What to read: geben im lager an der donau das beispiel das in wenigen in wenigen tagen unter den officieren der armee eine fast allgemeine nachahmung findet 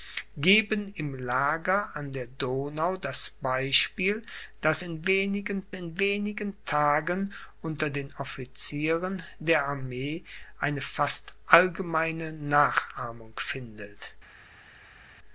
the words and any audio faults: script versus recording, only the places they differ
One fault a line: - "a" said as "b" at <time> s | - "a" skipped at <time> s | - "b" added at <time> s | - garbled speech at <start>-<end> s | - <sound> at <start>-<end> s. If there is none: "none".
none